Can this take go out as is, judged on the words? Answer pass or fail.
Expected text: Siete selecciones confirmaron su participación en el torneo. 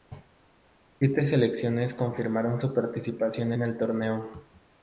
pass